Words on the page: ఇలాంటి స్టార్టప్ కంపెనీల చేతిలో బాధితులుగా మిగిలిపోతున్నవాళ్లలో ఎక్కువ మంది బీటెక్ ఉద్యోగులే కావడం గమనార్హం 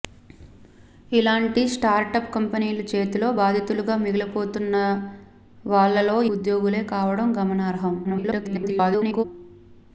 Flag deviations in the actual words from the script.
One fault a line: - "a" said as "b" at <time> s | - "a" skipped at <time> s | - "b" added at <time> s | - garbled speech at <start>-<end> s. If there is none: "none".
- "ఎక్కువ మంది బీటెక్" skipped at 4.9 s
- garbled speech at 8.0-9.2 s